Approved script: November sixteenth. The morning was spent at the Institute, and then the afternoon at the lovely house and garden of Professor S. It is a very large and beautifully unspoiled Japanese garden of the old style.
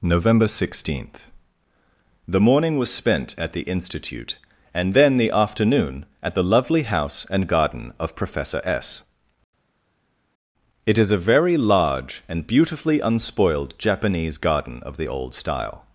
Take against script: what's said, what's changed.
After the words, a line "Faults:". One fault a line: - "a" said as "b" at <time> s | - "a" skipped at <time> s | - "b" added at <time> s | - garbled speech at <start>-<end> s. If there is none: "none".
November sixteenth. The morning was spent at the Institute, and then the afternoon at the lovely house and garden of Professor S. It is a very large and beautifully unspoiled Japanese garden of the old style.
Faults:
none